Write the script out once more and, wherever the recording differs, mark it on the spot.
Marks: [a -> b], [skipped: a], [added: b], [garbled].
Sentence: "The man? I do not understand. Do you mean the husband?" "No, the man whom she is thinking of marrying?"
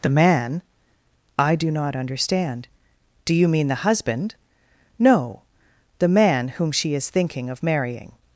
"The man? I do not understand. Do you mean the husband?" "No, the man whom she is thinking of marrying?"